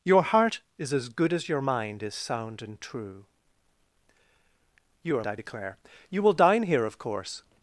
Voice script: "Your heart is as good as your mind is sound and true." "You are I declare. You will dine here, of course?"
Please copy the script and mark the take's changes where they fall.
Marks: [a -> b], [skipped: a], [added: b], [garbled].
"Your heart is as good as your mind is sound and true." "You are I declare. You will dine here, of course?"